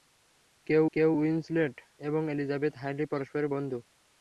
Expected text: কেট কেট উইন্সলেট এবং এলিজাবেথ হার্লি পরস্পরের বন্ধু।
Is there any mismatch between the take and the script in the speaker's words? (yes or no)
no